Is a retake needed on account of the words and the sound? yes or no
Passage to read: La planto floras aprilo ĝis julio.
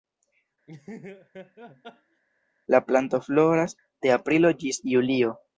yes